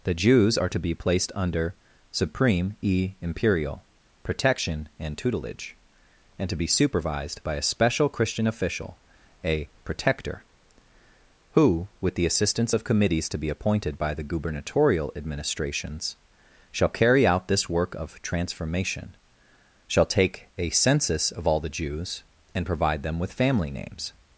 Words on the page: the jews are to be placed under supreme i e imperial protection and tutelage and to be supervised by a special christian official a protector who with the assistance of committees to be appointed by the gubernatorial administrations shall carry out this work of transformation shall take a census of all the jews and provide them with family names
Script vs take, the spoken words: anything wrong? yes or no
yes